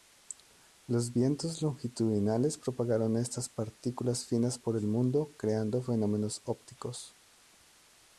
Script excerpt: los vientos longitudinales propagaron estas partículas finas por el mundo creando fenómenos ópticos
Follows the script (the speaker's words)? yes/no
yes